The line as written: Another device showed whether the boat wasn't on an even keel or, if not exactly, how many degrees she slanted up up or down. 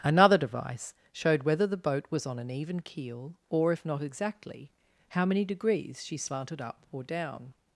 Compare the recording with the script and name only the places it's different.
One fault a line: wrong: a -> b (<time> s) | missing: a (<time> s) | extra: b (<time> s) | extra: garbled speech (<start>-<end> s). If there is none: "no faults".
wrong: wasn't -> was (2.1 s)
missing: up (6.8 s)